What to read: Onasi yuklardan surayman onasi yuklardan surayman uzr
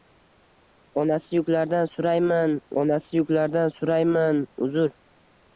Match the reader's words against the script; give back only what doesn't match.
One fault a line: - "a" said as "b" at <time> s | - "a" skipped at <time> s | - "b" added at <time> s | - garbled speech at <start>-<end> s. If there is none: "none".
none